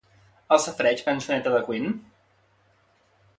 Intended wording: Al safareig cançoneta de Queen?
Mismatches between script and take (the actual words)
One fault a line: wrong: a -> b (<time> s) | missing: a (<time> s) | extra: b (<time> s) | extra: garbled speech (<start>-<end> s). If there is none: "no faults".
no faults